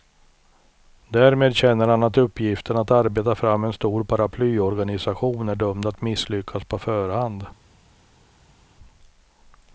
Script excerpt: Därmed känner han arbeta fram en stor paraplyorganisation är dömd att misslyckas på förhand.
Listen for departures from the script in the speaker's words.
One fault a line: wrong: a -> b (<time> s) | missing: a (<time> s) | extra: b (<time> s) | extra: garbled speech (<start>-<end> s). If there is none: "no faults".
extra: att uppgiften att (2.0 s)